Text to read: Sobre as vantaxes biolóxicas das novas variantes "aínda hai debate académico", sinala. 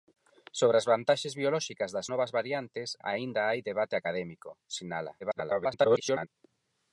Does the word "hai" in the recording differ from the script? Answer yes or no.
no